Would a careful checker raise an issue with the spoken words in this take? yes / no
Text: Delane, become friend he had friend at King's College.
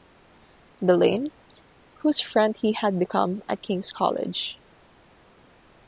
yes